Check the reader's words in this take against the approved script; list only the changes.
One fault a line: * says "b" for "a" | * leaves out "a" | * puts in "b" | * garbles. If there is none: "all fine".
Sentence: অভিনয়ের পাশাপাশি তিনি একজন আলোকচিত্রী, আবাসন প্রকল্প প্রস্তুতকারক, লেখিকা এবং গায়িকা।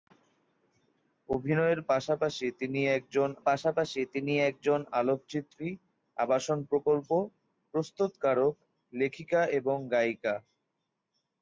* puts in "পাশাপাশি তিনি একজন"